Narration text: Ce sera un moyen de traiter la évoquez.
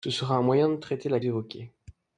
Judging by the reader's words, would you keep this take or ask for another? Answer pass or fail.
pass